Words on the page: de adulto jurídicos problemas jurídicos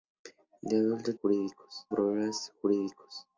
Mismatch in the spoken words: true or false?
false